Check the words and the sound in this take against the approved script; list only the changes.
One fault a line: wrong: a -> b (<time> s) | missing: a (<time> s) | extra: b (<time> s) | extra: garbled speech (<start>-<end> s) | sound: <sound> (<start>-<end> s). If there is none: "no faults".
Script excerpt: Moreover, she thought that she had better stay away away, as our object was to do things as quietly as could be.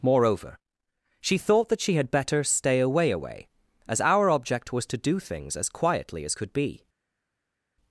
no faults